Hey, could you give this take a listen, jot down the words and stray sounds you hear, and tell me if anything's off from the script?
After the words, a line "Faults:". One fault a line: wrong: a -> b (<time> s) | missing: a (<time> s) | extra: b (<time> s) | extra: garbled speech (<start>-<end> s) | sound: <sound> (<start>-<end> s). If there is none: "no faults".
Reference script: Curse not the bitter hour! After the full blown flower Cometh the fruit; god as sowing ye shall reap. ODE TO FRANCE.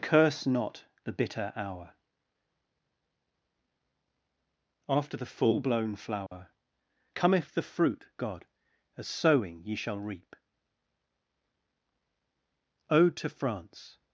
Curse not the bitter hour! After the full blown flower Cometh the fruit; god as sowing ye shall reap. ODE TO FRANCE.
Faults:
sound: dropout (6.3-6.3 s)